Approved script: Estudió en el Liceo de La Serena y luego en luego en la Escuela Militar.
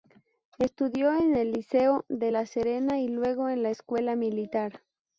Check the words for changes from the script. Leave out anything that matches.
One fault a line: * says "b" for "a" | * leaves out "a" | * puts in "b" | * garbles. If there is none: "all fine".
* leaves out "luego en"